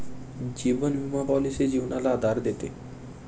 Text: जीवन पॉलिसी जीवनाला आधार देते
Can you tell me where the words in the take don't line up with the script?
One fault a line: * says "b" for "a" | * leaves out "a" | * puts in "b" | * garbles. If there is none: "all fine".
* puts in "विमा"